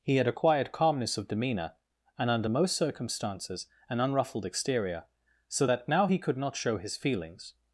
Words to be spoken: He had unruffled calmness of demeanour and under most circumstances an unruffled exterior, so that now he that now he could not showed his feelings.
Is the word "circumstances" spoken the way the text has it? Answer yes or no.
yes